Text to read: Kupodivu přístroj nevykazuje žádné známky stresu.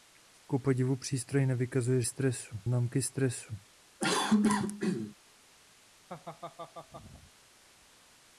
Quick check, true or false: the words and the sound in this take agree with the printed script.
false